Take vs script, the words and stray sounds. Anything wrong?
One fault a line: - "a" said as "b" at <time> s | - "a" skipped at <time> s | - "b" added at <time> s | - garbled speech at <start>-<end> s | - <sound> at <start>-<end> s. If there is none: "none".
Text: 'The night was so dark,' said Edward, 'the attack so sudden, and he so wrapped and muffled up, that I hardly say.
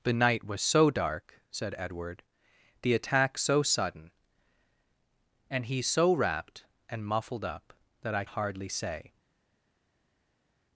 none